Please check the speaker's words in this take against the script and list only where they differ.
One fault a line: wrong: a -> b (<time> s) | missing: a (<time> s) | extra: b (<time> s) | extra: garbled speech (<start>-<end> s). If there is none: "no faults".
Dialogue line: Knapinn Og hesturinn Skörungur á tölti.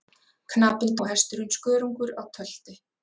no faults